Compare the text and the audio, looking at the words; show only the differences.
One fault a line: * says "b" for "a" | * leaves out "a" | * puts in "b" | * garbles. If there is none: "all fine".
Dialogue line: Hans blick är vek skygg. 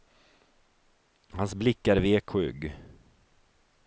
all fine